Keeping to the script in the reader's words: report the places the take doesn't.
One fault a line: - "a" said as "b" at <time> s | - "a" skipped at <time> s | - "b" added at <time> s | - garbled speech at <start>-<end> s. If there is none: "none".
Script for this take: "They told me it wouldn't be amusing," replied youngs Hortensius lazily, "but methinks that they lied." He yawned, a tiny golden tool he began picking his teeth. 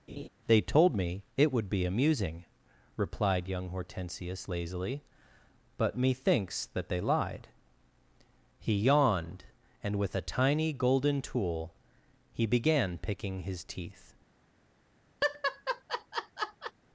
- "wouldn't" said as "would" at 1.5 s
- "youngs" said as "young" at 3.5 s
- "and with" added at 9.8 s